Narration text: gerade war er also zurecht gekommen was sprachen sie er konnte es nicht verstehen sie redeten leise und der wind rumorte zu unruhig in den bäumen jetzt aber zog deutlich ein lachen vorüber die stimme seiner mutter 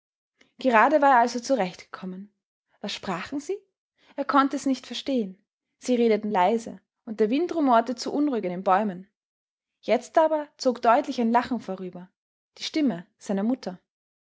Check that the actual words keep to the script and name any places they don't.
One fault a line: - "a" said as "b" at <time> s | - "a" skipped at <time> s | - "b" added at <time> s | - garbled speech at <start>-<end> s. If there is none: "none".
none